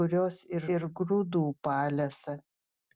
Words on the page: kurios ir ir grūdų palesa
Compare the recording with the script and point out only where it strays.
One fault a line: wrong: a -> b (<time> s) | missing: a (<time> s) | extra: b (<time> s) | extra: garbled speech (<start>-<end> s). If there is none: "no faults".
no faults